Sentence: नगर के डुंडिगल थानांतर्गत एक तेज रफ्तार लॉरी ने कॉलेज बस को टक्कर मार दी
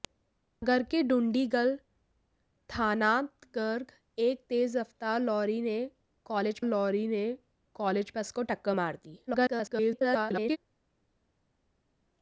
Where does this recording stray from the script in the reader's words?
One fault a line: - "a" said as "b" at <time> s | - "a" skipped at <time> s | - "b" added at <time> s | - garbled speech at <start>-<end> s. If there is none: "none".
- "लॉरी ने कॉलेज" added at 6.6 s
- garbled speech at 9.3-10.6 s